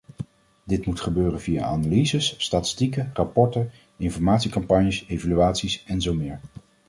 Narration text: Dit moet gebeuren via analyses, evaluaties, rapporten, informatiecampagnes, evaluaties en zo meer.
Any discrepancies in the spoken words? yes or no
yes